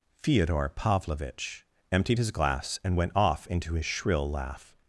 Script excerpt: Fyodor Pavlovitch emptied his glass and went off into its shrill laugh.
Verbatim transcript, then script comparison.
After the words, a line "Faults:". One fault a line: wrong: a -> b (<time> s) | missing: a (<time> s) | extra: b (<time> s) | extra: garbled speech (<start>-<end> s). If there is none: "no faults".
Fyodor Pavlovitch emptied his glass and went off into his shrill laugh.
Faults:
wrong: its -> his (3.7 s)